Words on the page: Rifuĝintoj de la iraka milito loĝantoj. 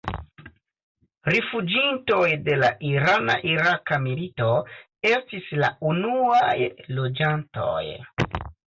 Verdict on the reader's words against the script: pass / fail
fail